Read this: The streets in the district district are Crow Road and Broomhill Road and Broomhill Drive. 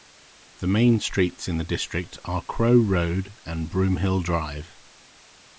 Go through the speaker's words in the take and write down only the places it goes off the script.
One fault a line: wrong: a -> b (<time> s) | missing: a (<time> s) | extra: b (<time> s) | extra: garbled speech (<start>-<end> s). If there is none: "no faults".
extra: main (0.7 s)
missing: district (2.2 s)
missing: Road and Broomhill (4.2 s)